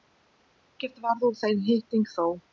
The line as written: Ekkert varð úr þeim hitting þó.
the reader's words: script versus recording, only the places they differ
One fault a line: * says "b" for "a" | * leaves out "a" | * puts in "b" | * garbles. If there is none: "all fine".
all fine